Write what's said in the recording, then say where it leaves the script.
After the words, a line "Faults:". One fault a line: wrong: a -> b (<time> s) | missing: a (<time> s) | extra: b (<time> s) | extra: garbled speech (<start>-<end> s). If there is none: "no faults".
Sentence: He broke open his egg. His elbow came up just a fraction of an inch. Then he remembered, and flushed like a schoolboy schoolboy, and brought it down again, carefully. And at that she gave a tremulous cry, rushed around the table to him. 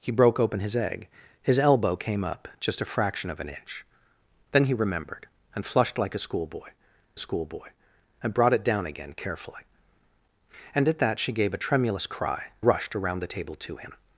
He broke open his egg. His elbow came up just a fraction of an inch. Then he remembered, and flushed like a schoolboy schoolboy, and brought it down again, carefully. And at that she gave a tremulous cry, rushed around the table to him.
Faults:
no faults